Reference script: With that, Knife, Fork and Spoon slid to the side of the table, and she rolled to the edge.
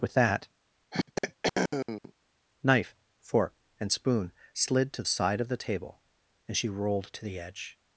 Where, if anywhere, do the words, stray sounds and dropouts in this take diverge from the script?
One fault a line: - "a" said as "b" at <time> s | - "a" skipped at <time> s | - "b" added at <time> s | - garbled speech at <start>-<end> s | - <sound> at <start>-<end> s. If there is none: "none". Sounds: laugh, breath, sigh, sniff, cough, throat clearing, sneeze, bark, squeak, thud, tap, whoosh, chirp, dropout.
- throat clearing at 0.9-2.1 s
- "the" skipped at 5.0 s